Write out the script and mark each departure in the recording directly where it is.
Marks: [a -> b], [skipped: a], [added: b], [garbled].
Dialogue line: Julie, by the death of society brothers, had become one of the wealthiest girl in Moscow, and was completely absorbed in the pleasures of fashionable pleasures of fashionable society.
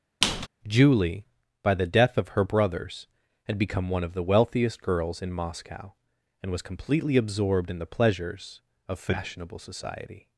Julie, by the death of [society -> her] brothers, had become one of the wealthiest [girl -> girls] in Moscow, and was completely absorbed in the pleasures of fashionable [skipped: pleasures of fashionable] society.